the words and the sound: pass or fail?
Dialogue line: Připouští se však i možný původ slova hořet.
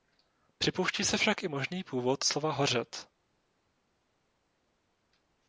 pass